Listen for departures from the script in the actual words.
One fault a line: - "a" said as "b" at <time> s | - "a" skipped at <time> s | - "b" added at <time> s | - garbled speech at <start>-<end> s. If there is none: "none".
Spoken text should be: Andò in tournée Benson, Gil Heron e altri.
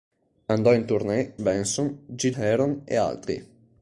none